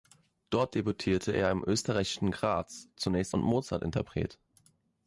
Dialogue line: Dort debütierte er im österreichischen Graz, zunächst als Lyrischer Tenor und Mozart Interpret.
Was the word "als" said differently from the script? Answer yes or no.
yes